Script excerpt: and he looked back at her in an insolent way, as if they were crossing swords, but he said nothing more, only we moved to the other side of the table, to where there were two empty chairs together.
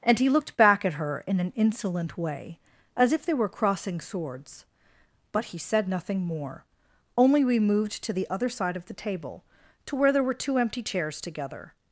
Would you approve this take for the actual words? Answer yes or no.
yes